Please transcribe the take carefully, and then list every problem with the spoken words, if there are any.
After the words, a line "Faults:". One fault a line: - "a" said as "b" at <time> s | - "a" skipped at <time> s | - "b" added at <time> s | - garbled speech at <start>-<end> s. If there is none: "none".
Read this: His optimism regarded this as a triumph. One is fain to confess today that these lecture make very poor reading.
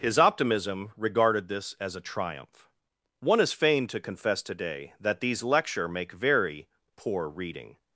His optimism regarded this as a triumph. One is fain to confess today that these lecture make very poor reading.
Faults:
none